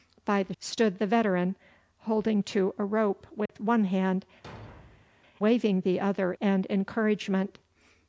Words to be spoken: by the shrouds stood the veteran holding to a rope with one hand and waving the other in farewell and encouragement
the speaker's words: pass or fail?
fail